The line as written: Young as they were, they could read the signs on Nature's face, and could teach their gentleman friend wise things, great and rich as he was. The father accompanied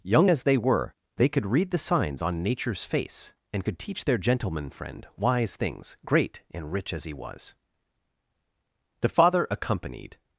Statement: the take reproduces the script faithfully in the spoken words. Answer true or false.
true